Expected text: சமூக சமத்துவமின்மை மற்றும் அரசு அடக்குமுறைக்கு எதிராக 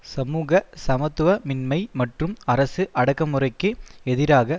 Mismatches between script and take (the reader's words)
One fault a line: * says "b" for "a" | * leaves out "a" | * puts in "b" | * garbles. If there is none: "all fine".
all fine